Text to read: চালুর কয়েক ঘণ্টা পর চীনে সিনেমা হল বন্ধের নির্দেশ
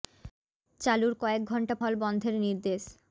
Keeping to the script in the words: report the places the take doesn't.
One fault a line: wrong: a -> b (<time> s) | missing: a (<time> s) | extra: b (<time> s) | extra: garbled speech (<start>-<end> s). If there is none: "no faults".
missing: পর চীনে সিনেমা (1.8 s)